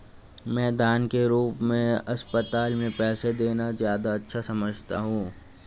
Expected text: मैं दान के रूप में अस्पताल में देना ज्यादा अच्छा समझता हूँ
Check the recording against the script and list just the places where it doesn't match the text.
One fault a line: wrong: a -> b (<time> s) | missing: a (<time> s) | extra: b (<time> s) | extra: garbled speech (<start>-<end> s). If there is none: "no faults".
extra: पैसे (2.9 s)